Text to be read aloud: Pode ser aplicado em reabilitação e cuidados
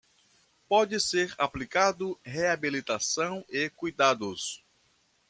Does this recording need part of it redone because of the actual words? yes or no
yes